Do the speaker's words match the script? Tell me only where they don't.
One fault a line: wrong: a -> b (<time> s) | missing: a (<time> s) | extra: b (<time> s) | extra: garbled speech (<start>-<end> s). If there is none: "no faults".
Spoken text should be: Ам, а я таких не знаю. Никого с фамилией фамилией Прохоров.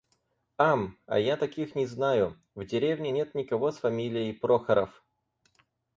extra: В деревне нет (2.5 s)
missing: фамилией (4.3 s)